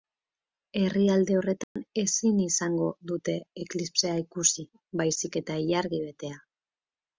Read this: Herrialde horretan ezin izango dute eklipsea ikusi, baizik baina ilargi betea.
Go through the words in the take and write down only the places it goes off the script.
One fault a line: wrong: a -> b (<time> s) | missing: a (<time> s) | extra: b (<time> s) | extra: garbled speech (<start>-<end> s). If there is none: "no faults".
wrong: baina -> eta (5.5 s)